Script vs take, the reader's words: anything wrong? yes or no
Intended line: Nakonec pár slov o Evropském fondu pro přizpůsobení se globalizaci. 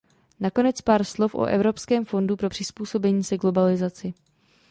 no